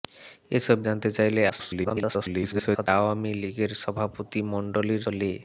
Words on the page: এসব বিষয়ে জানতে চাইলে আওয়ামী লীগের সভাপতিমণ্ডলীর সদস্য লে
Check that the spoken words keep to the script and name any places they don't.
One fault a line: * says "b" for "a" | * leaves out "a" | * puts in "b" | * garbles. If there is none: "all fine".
* leaves out "বিষয়ে"
* garbles
* leaves out "সদস্য"